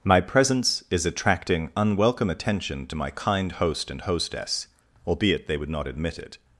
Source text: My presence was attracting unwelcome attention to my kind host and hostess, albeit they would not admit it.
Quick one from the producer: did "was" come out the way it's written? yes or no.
no